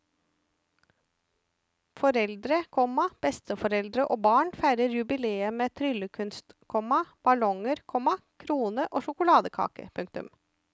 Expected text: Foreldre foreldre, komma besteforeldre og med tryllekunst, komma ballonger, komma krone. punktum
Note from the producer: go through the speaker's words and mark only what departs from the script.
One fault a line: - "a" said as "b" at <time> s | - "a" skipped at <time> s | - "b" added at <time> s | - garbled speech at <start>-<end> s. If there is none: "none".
- "foreldre" skipped at 2.6 s
- "barn feirer jubileet" added at 4.2 s
- "og sjokoladekake" added at 8.9 s